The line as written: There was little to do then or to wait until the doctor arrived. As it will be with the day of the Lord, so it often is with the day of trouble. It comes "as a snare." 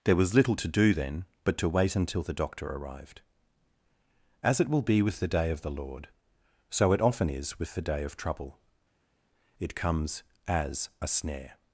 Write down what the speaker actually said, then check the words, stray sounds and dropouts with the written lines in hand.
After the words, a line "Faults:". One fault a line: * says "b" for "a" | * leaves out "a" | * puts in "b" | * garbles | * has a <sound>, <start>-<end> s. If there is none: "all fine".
There was little to do then but to wait until the doctor arrived. As it will be with the day of the Lord, so it often is with the day of trouble. It comes "as a snare."
Faults:
* says "but" for "or"